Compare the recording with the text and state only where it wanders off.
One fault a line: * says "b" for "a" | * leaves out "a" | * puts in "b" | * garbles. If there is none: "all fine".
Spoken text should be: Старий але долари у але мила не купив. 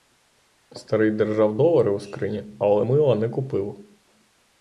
* says "держав" for "але"
* puts in "скрині"